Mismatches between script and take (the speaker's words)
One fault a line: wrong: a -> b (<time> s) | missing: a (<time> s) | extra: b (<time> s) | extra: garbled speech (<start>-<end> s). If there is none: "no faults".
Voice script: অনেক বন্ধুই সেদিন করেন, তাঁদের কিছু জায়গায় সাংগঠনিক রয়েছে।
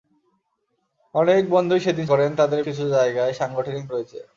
no faults